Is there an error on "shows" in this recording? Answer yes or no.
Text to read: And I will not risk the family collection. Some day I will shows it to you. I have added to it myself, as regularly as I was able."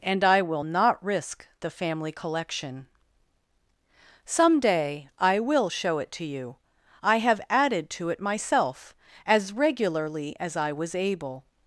yes